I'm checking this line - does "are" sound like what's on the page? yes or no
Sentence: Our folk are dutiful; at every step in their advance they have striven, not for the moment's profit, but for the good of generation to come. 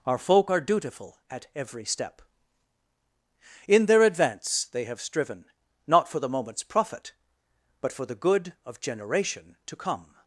yes